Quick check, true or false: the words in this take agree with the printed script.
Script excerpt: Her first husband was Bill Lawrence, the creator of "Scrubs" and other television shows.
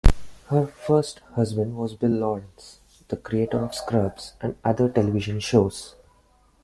true